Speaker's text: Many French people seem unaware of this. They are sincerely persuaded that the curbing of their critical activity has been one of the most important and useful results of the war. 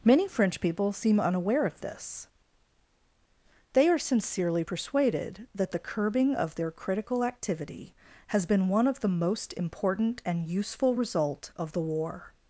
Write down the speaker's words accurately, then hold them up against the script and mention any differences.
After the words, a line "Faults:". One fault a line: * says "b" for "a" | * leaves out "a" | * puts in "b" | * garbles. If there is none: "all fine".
Many French people seem unaware of this. They are sincerely persuaded that the curbing of their critical activity has been one of the most important and useful result of the war.
Faults:
* says "result" for "results"